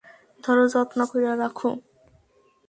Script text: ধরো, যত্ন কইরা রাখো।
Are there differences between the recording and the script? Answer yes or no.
no